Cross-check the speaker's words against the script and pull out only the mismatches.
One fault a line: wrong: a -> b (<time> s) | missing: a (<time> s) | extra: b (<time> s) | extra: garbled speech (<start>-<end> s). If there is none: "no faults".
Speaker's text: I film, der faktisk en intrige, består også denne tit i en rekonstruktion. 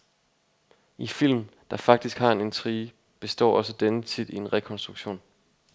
extra: har (2.2 s)